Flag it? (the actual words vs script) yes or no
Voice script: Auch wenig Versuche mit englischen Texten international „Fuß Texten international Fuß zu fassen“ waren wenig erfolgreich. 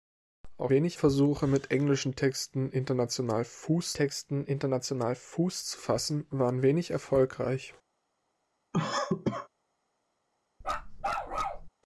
no